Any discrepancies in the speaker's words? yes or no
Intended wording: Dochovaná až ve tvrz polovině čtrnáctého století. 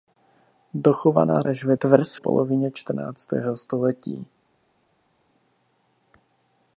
no